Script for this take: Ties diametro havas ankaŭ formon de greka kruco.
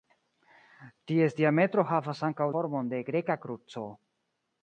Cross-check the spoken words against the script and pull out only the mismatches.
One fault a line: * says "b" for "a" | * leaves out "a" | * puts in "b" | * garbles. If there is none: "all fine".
all fine